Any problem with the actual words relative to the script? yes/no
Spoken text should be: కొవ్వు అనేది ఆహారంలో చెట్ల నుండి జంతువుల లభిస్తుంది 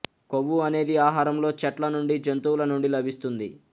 yes